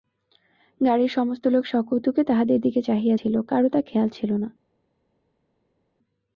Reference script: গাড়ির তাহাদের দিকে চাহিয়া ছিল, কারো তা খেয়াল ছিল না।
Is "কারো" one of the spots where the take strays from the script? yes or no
no